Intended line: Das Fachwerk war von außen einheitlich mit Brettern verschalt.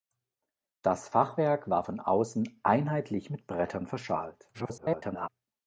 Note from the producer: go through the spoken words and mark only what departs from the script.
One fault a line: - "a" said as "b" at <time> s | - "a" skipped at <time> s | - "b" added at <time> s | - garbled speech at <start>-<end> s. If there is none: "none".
- garbled speech at 4.5-5.3 s